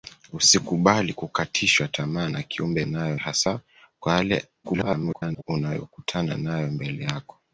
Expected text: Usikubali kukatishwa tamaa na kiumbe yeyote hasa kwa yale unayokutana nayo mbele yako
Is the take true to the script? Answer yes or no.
no